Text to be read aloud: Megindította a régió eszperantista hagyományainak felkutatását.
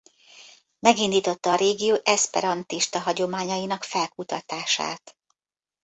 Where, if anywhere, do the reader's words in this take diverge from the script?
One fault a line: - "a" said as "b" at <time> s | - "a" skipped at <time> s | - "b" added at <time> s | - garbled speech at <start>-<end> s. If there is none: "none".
none